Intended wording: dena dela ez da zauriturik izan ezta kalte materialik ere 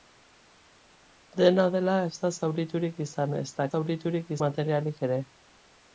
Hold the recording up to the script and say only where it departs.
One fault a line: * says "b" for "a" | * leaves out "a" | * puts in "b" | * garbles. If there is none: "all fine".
* says "zauriturik" for "kalte"